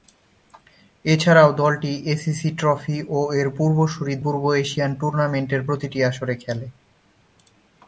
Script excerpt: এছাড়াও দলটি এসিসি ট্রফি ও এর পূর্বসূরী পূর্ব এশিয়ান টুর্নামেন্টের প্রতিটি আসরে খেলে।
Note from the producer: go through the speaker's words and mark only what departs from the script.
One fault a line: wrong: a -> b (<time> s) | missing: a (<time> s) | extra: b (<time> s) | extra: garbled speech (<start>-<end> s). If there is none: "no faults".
no faults